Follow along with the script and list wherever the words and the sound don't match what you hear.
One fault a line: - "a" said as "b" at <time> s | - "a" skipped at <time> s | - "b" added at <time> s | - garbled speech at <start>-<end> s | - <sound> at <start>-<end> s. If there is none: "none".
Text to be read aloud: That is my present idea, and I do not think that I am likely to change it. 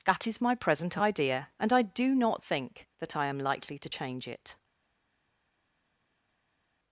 none